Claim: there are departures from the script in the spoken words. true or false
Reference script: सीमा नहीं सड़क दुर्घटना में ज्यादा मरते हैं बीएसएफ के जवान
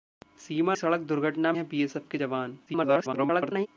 true